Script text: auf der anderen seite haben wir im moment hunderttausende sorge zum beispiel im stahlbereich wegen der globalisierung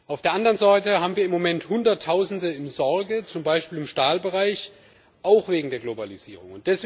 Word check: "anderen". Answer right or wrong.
right